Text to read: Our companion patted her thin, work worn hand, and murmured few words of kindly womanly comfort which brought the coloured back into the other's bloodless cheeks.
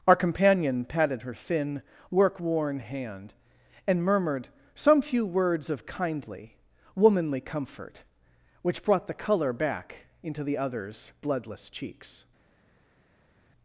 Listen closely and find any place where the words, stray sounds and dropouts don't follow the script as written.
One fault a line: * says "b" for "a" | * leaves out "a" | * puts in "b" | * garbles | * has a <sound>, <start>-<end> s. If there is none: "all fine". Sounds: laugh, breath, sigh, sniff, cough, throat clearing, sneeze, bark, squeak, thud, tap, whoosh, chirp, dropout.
* puts in "some"
* says "colour" for "coloured"